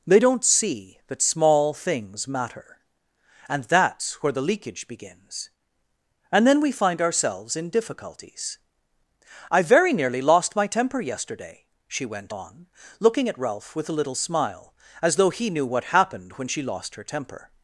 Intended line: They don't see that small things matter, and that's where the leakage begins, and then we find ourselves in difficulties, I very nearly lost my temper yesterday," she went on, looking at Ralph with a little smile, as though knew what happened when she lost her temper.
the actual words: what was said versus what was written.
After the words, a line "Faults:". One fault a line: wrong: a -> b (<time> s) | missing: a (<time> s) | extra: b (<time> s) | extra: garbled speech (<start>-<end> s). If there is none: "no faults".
They don't see that small things matter, and that's where the leakage begins, and then we find ourselves in difficulties, I very nearly lost my temper yesterday," she went on, looking at Ralph with a little smile, as though he knew what happened when she lost her temper.
Faults:
extra: he (15.3 s)